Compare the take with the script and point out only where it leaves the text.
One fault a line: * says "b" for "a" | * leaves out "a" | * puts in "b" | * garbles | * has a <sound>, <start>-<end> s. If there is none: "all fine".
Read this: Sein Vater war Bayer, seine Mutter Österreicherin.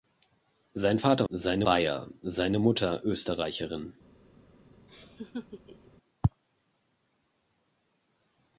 * says "seine" for "war"
* has a laugh, 4.9-5.9 s